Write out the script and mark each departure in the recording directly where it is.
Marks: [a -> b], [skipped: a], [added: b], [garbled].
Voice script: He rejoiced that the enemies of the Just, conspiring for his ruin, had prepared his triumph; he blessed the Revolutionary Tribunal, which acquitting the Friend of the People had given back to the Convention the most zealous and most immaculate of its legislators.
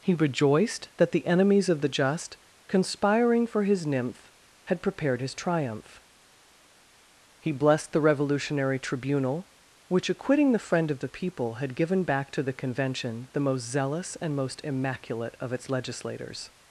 He rejoiced that the enemies of the Just, conspiring for his [ruin, -> nymph] had prepared his triumph; he blessed the Revolutionary Tribunal, which acquitting the Friend of the People had given back to the Convention the most zealous and most immaculate of its legislators.